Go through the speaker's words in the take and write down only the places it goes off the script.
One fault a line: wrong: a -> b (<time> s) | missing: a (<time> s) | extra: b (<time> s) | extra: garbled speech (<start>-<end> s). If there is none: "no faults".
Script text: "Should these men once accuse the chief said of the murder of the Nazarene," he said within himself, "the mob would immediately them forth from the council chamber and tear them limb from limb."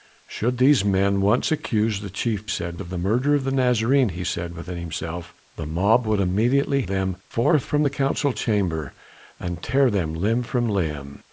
no faults